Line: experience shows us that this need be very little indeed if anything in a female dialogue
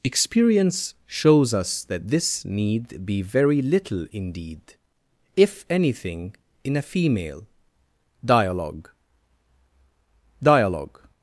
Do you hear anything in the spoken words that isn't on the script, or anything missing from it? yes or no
yes